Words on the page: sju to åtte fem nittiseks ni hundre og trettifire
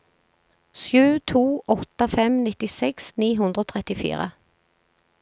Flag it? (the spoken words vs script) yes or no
no